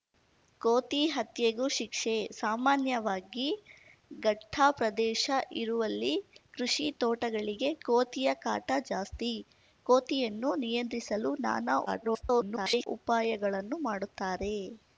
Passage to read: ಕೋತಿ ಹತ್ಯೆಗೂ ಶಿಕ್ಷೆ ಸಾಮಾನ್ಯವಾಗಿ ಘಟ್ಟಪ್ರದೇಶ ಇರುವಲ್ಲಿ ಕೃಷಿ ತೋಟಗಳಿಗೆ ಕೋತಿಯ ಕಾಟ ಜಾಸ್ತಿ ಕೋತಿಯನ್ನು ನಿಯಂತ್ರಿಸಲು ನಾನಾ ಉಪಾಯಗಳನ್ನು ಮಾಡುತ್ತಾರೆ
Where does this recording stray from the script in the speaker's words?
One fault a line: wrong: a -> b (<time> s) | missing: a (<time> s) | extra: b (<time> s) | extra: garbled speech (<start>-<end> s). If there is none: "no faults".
extra: garbled speech (11.9-12.9 s)